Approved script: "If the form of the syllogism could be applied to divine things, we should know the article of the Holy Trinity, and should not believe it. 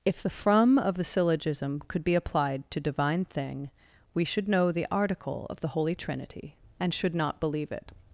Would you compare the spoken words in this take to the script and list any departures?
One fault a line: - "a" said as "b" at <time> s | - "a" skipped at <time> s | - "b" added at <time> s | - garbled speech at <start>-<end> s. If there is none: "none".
- "form" said as "from" at 0.3 s
- "things" said as "thing" at 3.3 s